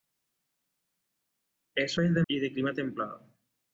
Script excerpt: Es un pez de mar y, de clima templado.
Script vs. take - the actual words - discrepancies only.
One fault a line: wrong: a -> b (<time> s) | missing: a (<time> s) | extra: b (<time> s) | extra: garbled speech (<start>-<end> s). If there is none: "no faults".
missing: un (2.0 s)
missing: mar (2.2 s)